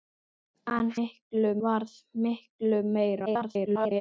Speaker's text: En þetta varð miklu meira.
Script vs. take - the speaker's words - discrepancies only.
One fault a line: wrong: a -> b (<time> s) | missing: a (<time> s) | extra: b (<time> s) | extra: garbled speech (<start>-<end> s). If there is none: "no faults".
wrong: þetta -> miklu (1.0 s)
extra: garbled speech (3.3-4.0 s)